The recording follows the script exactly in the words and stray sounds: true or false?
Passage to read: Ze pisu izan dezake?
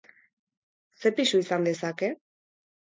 true